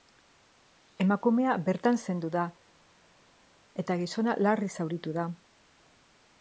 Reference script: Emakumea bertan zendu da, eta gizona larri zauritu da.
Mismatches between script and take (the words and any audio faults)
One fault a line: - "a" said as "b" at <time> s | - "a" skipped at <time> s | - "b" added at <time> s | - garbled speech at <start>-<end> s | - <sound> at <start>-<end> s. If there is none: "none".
none